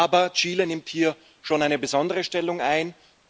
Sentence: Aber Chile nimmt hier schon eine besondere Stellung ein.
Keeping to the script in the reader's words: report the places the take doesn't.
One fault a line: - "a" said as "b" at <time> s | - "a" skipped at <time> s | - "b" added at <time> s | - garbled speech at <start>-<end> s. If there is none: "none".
none